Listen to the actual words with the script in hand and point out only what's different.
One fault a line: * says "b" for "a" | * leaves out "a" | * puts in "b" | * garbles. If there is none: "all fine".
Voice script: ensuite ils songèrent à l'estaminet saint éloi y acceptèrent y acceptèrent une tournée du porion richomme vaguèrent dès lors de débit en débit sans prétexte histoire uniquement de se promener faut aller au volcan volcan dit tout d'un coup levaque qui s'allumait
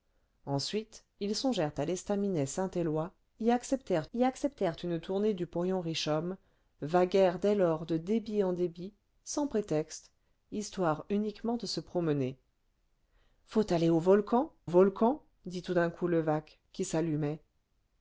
all fine